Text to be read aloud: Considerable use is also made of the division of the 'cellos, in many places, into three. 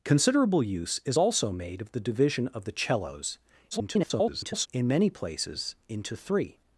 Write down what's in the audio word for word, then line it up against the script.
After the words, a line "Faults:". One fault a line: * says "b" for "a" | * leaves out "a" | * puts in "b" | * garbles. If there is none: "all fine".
Considerable use is also made of the division of the 'cellos, [garbled] in many places, into three.
Faults:
* garbles